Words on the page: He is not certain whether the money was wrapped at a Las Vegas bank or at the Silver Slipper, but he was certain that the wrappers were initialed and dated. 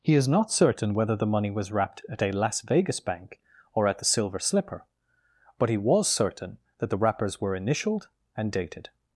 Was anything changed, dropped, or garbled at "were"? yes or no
no